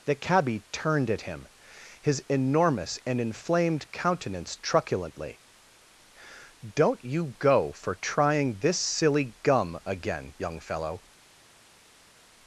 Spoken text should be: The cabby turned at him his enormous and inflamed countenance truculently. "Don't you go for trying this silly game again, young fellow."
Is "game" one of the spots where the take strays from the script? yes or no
yes